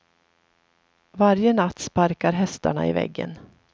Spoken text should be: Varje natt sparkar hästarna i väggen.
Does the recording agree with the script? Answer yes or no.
yes